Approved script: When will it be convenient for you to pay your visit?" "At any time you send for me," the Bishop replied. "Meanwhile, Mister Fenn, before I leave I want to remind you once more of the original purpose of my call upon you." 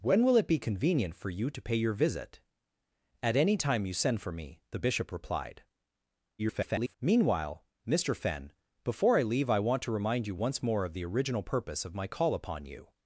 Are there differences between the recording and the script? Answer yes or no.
yes